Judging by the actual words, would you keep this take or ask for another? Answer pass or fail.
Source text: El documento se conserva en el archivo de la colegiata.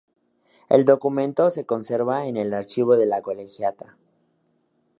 pass